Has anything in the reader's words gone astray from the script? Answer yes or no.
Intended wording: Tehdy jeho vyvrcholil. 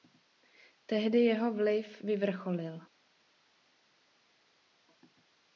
yes